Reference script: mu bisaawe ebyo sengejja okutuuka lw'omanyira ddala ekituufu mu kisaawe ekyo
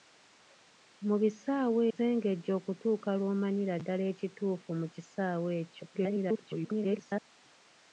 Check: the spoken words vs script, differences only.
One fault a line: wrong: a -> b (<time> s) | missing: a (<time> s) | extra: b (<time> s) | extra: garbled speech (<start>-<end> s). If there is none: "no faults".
missing: ebyo (1.8 s)
extra: garbled speech (5.9-7.2 s)